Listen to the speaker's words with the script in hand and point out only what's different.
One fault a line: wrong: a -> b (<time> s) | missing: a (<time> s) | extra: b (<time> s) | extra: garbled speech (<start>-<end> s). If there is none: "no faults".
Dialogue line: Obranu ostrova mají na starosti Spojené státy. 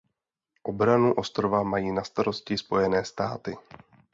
no faults